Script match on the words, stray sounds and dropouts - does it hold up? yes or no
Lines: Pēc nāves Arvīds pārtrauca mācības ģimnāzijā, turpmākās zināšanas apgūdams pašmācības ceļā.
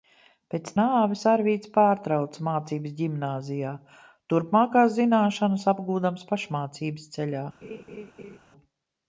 no